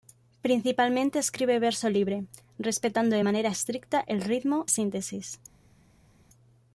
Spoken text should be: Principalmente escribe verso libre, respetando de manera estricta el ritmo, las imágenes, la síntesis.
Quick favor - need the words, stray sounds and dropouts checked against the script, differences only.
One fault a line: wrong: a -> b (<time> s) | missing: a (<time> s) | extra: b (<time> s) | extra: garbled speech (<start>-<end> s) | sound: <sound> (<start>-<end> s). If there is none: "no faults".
missing: las imágenes la (4.7 s)